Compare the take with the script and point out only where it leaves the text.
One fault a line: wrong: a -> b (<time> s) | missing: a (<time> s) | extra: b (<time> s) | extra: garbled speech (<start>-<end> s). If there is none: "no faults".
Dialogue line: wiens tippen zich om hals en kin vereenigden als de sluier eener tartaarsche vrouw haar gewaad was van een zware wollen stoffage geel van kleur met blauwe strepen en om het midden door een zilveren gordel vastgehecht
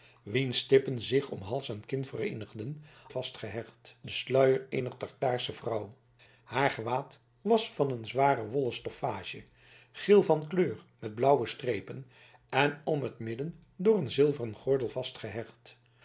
wrong: als -> vastgehecht (3.1 s)